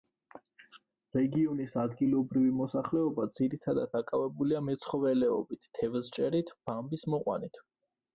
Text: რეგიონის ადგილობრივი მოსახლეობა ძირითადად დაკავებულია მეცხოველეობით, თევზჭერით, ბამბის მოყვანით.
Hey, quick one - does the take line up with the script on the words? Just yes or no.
yes